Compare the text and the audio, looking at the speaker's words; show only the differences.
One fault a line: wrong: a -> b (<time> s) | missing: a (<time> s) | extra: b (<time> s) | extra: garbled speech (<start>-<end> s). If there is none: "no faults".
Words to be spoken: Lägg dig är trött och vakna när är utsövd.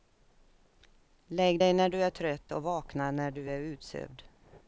extra: när du (1.7 s)
extra: du (3.3 s)